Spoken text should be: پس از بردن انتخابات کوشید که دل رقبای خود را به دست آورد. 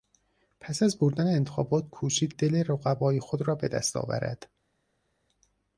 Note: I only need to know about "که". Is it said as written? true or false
false